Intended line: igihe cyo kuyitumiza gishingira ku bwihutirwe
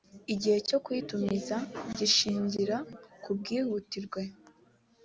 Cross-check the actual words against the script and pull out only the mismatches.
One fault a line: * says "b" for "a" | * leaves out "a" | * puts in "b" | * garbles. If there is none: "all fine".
all fine